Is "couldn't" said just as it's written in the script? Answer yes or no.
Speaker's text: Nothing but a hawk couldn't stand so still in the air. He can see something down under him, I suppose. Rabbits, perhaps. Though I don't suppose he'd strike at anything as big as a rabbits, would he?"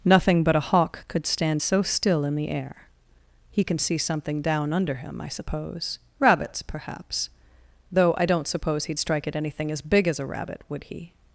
no